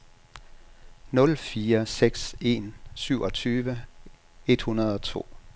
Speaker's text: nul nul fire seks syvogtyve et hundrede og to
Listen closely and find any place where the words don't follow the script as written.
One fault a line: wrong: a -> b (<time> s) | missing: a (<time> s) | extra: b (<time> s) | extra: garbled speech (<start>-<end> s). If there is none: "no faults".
missing: nul (1.4 s)
extra: en (2.4 s)